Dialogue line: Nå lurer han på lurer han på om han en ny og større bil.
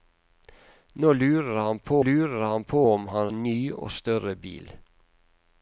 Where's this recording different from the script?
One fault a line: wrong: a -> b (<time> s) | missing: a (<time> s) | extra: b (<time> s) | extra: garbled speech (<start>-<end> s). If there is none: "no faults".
no faults